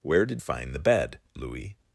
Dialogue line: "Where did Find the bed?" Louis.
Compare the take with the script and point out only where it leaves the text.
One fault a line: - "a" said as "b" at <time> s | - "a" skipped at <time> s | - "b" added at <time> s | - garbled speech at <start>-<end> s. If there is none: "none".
none